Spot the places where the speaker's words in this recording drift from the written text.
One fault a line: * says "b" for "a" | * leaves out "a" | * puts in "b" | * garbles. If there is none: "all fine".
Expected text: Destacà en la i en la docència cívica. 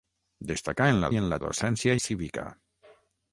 all fine